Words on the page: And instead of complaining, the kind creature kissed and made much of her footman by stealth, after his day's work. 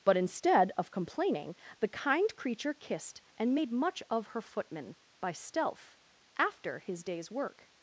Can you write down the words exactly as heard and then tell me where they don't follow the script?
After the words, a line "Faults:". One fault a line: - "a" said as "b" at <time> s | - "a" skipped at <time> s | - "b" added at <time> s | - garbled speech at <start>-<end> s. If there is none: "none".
But instead of complaining, the kind creature kissed and made much of her footman by stealth, after his day's work.
Faults:
- "And" said as "But" at 0.0 s